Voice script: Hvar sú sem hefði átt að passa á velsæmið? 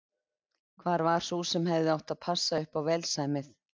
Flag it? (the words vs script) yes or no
yes